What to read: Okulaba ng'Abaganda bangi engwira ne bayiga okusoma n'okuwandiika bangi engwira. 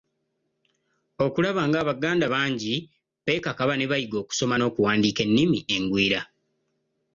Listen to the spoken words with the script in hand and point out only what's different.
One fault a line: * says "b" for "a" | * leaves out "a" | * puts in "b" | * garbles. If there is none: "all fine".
* says "beekakaba" for "engwira"
* says "ennimi" for "bangi"